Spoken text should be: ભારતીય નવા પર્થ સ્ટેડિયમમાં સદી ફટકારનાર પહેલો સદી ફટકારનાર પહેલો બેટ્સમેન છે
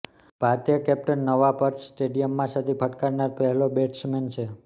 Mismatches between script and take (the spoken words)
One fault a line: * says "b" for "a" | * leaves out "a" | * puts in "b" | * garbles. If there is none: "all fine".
* puts in "કેપ્ટન"
* leaves out "સદી ફટકારનાર પહેલો"